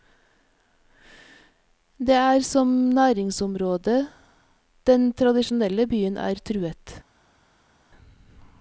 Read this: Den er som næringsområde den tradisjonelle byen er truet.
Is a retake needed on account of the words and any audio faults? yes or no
yes